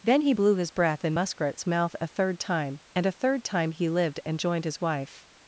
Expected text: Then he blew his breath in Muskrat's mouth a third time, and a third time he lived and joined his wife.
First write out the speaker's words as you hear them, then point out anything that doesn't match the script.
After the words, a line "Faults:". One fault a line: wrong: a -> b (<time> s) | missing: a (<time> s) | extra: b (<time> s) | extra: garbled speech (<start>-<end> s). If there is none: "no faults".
Then he blew his breath in Muskrat's mouth a third time, and a third time he lived and joined his wife.
Faults:
no faults